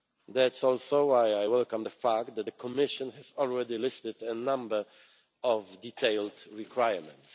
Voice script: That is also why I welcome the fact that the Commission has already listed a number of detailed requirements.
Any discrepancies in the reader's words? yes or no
no